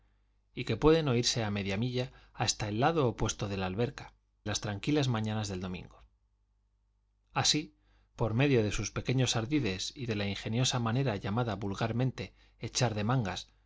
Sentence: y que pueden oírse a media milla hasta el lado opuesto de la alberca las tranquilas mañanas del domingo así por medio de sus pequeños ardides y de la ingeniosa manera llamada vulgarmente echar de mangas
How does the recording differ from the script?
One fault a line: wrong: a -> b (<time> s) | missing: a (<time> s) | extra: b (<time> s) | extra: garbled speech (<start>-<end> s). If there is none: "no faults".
no faults